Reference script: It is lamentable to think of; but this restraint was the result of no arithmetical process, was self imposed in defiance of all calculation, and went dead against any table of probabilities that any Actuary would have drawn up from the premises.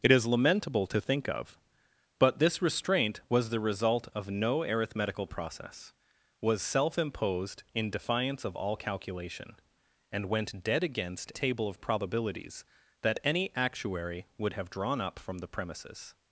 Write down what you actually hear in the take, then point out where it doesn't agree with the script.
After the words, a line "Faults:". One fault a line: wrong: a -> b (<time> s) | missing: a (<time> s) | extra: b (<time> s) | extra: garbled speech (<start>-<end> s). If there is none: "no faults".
It is lamentable to think of; but this restraint was the result of no arithmetical process, was self imposed in defiance of all calculation, and went dead against table of probabilities that any Actuary would have drawn up from the premises.
Faults:
missing: any (11.3 s)